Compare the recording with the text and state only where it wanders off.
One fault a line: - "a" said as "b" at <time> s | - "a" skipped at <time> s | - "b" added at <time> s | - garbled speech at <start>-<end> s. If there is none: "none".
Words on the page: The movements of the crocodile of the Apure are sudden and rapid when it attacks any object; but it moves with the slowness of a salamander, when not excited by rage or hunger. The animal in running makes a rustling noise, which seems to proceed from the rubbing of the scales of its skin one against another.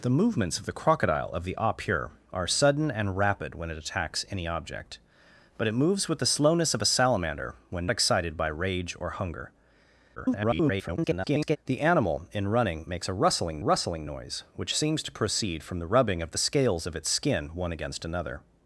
- "not" skipped at 7.9 s
- garbled speech at 10.2-11.6 s
- "rustling" added at 13.6 s